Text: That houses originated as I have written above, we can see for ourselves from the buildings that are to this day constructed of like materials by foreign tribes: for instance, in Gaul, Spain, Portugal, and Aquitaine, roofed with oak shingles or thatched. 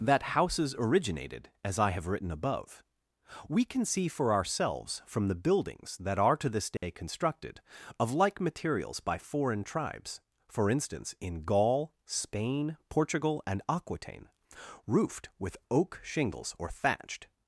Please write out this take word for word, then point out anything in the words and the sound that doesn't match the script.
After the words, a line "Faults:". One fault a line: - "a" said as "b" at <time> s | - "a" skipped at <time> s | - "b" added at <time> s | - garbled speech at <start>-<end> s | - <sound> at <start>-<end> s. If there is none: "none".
That houses originated as I have written above, we can see for ourselves from the buildings that are to this day constructed of like materials by foreign tribes: for instance, in Gaul, Spain, Portugal, and Aquitaine, roofed with oak shingles or thatched.
Faults:
- dropout at 6.8-6.8 s